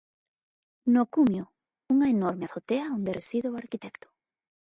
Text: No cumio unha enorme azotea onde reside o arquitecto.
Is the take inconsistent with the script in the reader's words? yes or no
no